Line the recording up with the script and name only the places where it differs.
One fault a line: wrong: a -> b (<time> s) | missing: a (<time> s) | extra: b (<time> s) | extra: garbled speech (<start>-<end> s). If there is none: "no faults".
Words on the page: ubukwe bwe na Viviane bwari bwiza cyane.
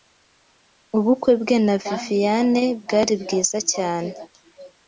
no faults